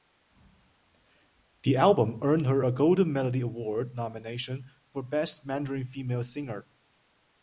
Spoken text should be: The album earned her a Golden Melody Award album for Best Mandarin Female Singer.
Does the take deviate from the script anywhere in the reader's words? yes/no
yes